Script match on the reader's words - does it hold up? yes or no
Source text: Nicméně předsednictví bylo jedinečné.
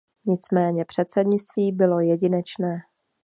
yes